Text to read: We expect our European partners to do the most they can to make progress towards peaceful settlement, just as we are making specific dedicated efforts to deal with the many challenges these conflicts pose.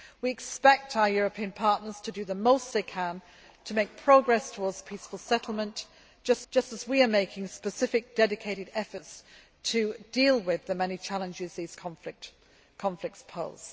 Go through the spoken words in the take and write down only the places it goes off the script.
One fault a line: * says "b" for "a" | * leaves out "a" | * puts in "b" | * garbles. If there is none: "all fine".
* puts in "just"